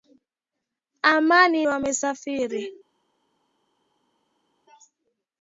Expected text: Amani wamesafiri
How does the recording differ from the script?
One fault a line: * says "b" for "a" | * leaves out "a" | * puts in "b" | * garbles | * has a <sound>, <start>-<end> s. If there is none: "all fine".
all fine